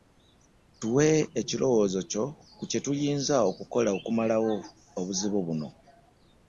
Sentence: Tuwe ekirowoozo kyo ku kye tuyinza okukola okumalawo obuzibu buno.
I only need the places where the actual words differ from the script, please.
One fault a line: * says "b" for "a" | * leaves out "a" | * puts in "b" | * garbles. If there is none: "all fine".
all fine